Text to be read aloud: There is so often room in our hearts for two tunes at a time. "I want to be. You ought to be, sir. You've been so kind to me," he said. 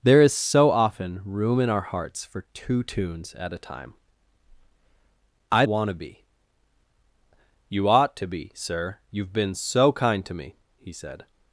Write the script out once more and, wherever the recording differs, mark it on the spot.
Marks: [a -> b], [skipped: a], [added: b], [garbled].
There is so often room in our hearts for two tunes at a time. "I want to be. You ought to be, sir. You've been so kind to me," he said.